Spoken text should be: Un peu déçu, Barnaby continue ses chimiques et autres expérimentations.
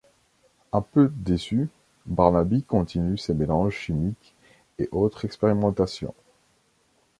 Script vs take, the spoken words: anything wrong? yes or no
yes